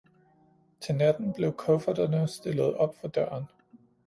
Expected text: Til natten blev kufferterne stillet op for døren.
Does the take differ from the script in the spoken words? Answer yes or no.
no